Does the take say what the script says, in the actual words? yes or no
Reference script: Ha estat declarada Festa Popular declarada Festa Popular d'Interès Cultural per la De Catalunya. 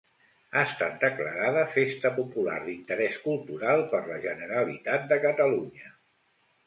no